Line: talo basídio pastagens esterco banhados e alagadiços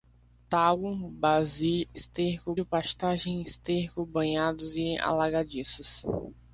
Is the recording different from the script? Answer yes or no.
yes